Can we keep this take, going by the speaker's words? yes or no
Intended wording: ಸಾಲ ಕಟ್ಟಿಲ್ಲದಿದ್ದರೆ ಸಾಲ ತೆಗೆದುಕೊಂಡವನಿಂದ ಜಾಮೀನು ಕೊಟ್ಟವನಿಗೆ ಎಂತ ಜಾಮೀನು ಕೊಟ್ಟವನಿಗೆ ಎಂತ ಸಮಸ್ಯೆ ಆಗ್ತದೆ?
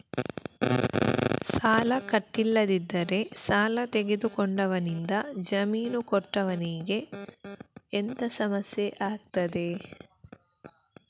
no